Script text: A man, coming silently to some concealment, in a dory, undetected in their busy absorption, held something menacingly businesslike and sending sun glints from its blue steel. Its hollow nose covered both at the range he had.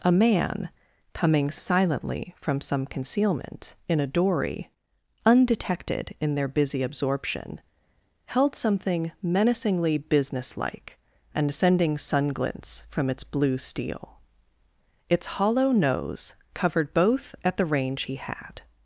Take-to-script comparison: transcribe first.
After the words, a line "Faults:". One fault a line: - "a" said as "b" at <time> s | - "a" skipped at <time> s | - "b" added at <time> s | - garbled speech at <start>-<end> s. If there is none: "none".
A man, coming silently from some concealment, in a dory, undetected in their busy absorption, held something menacingly businesslike and sending sun glints from its blue steel. Its hollow nose covered both at the range he had.
Faults:
- "to" said as "from" at 2.4 s